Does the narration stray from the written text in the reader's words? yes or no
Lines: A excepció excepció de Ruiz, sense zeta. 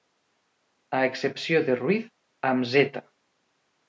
yes